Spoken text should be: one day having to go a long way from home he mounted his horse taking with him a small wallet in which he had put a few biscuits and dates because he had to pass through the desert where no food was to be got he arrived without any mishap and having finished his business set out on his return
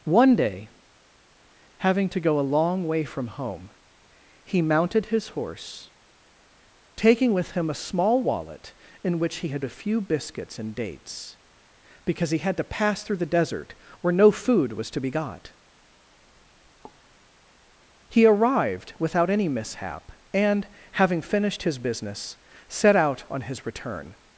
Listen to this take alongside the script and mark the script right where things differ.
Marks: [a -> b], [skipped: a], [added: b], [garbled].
one day having to go a long way from home he mounted his horse taking with him a small wallet in which he had [skipped: put] a few biscuits and dates because he had to pass through the desert where no food was to be got he arrived without any mishap and having finished his business set out on his return